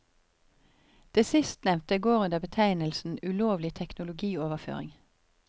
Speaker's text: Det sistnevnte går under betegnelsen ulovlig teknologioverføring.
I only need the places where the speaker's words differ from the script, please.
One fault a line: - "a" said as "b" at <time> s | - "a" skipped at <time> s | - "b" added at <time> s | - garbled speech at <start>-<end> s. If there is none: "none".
none